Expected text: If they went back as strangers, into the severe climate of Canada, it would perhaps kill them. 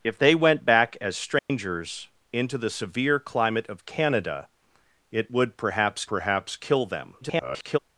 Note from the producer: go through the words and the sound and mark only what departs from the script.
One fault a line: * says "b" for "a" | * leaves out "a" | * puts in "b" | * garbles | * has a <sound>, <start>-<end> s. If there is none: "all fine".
* has a dropout, 1.4-1.5 s
* puts in "perhaps"
* garbles